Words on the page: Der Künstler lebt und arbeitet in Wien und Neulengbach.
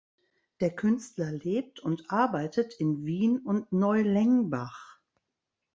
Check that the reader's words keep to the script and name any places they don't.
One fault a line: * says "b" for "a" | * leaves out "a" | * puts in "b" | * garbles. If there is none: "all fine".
all fine